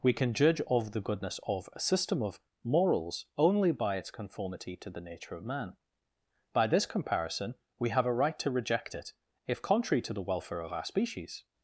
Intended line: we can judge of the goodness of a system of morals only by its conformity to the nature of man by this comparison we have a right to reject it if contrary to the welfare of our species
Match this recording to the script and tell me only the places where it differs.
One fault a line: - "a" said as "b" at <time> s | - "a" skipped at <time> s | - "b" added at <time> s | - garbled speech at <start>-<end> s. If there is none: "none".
none